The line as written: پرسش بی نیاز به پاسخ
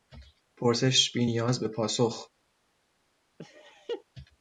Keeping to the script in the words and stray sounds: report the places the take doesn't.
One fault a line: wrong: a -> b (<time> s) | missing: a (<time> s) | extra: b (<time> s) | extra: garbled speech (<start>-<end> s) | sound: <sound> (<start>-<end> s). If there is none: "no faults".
sound: laugh (3.4-4.0 s)